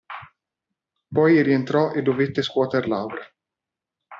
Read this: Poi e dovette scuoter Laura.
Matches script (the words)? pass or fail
fail